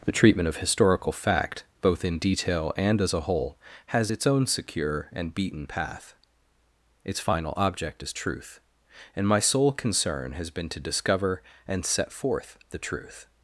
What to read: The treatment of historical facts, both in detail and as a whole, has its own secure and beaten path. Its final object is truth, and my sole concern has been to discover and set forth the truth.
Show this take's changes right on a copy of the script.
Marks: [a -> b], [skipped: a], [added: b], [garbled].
The treatment of historical [facts, -> fact] both in detail and as a whole, has its own secure and beaten path. Its final object is truth, and my sole concern has been to discover and set forth the truth.